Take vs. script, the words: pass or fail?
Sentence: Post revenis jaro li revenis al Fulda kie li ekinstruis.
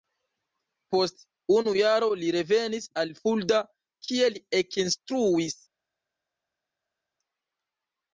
fail